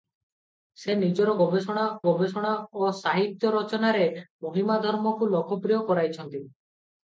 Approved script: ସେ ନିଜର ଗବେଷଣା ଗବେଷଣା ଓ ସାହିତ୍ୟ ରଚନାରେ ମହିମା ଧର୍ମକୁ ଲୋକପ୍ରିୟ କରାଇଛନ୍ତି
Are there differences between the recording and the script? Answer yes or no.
no